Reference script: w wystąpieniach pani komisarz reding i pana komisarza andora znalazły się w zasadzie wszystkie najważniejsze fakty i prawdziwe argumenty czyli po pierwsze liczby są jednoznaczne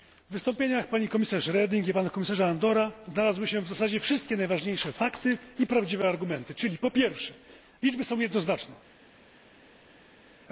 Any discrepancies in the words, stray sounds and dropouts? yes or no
no